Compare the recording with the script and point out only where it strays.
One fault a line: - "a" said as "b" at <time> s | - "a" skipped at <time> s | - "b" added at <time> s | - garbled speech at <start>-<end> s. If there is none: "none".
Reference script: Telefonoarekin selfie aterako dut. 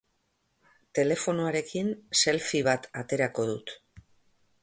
- "bat" added at 2.7 s